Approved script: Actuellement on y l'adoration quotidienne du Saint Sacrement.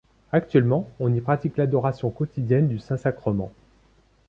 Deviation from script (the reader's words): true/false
true